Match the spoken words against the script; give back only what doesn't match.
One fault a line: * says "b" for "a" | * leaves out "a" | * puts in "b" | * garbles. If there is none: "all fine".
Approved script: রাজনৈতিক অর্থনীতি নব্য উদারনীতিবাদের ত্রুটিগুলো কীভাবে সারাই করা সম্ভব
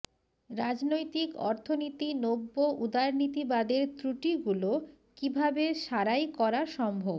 all fine